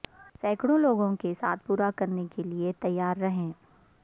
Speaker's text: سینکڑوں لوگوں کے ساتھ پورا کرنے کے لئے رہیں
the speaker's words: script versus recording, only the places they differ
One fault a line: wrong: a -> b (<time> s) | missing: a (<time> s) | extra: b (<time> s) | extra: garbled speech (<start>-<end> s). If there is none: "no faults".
extra: تیار (2.8 s)